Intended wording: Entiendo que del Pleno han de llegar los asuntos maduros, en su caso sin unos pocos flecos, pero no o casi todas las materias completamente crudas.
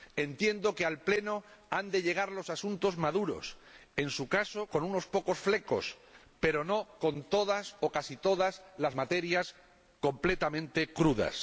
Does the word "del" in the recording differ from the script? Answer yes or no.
yes